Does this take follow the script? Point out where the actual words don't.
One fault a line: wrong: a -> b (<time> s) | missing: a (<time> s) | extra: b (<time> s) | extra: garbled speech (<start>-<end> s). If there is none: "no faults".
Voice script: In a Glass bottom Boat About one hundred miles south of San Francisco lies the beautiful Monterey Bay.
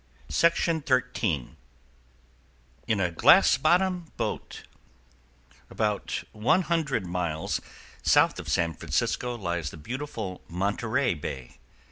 no faults